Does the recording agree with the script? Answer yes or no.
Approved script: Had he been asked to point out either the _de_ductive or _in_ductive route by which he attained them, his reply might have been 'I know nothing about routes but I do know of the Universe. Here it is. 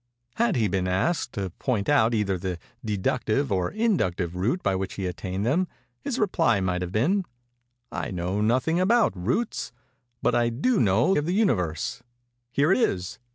yes